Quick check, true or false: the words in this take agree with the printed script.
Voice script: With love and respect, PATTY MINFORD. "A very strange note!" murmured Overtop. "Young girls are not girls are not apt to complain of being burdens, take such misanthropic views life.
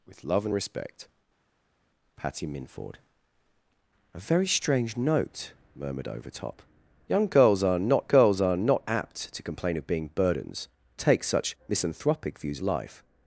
true